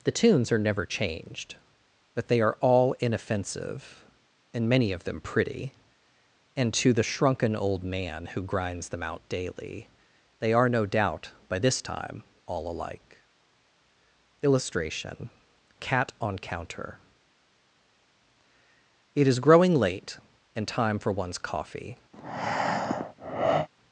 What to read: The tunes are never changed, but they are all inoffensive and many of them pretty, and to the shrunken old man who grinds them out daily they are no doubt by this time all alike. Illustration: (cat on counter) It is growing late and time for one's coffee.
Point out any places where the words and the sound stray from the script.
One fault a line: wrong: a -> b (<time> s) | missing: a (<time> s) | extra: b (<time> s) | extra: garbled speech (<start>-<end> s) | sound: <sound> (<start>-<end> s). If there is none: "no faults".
sound: breath (22.1-23.7 s)